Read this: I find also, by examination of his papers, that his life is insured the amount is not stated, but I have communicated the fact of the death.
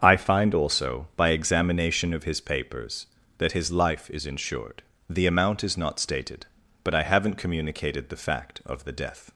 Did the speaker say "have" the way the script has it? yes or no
no